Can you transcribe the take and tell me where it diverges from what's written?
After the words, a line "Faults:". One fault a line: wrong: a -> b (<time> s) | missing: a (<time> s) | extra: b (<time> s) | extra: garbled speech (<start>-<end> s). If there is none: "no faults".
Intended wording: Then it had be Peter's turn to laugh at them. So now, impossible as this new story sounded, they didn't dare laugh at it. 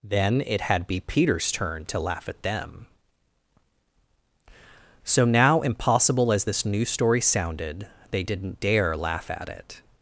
Then it had be Peter's turn to laugh at them. So now, impossible as this new story sounded, they didn't dare laugh at it.
Faults:
no faults